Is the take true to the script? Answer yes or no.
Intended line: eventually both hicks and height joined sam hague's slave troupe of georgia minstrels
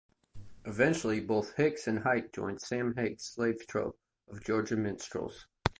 yes